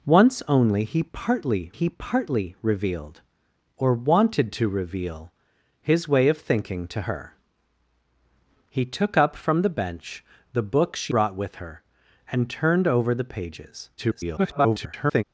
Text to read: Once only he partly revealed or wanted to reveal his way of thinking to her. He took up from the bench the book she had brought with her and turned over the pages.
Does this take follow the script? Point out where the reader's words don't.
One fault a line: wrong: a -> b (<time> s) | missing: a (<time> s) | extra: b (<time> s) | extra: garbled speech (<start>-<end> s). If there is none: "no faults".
extra: he partly (1.7 s)
missing: had (11.1 s)
extra: garbled speech (14.0-15.2 s)